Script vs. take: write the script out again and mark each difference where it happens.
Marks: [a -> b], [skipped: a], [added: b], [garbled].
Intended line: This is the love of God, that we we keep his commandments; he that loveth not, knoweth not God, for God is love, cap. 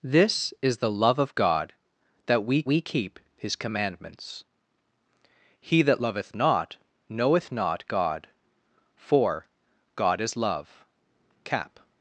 This is the love of God, that we we keep his commandments; he that loveth not, knoweth not God, for God is love, cap.